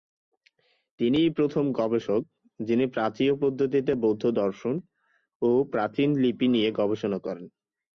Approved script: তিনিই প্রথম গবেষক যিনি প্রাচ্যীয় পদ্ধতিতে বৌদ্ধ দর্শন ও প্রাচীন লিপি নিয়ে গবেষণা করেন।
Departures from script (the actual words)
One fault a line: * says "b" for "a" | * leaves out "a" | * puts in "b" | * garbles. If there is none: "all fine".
all fine